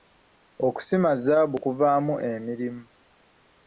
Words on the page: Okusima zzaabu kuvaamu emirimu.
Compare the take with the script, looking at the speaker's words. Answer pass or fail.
pass